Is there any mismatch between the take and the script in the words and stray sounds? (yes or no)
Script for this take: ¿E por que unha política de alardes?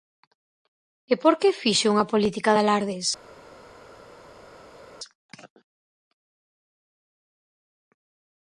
yes